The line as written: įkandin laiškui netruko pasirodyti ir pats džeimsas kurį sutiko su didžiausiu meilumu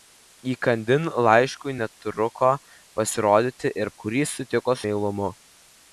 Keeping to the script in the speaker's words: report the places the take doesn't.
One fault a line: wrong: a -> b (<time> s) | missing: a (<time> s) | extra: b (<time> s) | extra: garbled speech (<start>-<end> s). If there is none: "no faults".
missing: pats džeimsas (3.9 s)
missing: su didžiausiu (4.8 s)